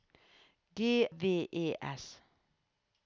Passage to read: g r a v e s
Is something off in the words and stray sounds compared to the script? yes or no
yes